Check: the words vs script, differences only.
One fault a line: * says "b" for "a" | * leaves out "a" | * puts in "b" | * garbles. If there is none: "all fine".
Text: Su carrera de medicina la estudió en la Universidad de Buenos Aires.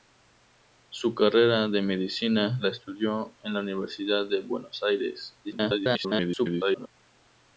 * garbles